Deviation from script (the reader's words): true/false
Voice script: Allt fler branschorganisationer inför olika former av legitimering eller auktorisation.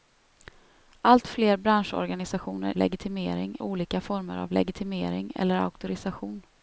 true